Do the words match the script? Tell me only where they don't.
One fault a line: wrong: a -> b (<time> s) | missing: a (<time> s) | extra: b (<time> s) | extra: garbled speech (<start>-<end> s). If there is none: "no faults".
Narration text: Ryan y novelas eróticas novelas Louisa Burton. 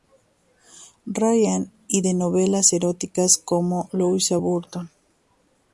extra: de (2.0 s)
wrong: novelas -> como (3.4 s)